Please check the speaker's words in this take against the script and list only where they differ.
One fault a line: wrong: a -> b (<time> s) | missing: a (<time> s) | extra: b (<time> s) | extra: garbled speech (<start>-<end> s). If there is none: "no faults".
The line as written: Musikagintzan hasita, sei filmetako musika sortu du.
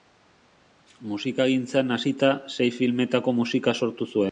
wrong: du -> zuen (4.0 s)